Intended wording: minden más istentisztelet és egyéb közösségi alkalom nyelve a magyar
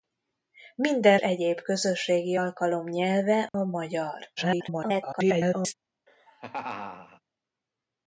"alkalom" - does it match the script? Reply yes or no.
yes